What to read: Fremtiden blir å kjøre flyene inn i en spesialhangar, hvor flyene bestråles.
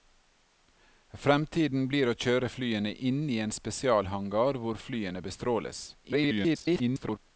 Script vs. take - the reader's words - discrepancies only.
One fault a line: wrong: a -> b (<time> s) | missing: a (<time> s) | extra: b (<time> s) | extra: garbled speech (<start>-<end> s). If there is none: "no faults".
extra: garbled speech (6.0-7.2 s)